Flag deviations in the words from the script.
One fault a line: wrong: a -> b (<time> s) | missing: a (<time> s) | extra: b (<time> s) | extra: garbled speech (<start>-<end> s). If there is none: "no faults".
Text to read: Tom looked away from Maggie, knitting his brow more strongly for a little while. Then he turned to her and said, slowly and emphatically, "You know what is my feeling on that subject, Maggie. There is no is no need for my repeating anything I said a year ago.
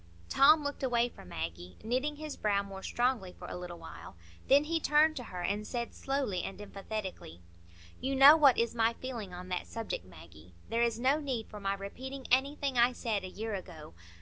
missing: is no (11.2 s)